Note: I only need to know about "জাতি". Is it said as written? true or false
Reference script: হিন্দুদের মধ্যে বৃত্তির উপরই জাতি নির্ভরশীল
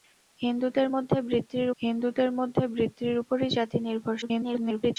true